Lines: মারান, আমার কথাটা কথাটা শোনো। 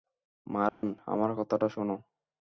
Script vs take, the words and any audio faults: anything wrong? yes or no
yes